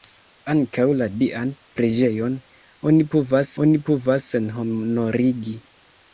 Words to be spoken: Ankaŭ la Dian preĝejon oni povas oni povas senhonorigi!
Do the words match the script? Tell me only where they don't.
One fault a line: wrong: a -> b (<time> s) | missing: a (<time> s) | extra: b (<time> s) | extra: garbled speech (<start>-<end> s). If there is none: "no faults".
no faults